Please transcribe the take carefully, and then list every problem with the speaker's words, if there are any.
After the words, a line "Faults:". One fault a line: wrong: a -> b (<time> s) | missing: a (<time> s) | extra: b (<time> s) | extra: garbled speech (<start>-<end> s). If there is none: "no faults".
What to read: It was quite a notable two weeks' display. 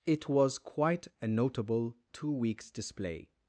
It was quite a notable two weeks' display.
Faults:
no faults